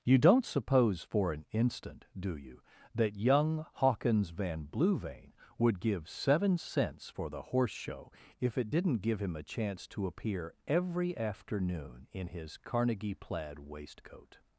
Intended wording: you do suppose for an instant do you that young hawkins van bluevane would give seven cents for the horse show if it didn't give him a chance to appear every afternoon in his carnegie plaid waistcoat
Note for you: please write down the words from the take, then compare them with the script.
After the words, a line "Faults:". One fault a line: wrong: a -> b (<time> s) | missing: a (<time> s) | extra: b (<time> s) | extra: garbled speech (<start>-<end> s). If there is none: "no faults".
you don't suppose for an instant do you that young hawkins van bluevane would give seven cents for the horse show if it didn't give him a chance to appear every afternoon in his carnegie plaid waistcoat
Faults:
wrong: do -> don't (0.2 s)